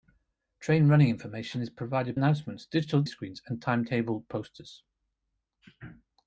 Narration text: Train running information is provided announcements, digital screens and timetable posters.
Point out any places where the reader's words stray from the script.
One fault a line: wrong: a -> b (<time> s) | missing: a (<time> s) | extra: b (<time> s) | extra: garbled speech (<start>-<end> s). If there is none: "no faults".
no faults